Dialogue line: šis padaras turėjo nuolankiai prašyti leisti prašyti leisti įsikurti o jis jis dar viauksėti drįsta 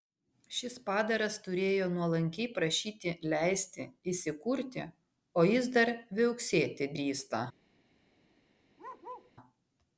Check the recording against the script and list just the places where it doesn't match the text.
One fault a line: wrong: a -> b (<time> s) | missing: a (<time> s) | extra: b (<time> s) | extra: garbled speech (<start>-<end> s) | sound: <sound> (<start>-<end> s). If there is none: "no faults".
missing: prašyti leisti (3.9 s)
missing: jis (5.7 s)
sound: bark (8.8-9.3 s)